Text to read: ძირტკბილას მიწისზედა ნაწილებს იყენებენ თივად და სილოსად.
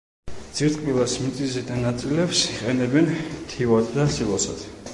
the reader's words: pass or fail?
pass